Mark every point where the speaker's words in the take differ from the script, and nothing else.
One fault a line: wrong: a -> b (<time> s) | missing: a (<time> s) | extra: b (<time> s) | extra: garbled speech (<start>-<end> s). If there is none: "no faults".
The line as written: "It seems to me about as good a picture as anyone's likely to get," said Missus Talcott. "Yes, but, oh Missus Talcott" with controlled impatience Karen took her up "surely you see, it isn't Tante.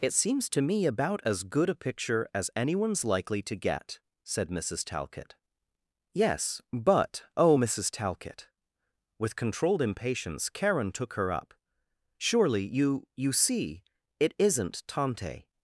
extra: you (13.1 s)